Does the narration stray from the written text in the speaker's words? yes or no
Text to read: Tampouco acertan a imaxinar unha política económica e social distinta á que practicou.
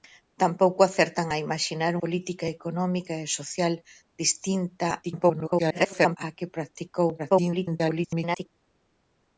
yes